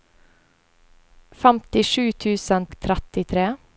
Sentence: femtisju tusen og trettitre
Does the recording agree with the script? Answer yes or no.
yes